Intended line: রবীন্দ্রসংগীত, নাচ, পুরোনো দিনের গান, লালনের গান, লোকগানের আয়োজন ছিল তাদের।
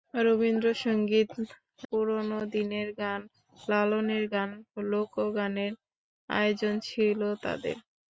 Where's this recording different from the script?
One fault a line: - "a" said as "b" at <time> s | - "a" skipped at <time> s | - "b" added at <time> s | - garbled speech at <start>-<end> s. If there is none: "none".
- "নাচ" skipped at 1.3 s